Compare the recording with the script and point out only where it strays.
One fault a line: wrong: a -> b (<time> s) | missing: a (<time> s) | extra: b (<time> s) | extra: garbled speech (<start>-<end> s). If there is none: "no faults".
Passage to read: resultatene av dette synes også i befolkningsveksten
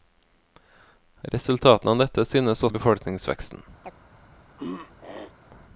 missing: også (2.6 s)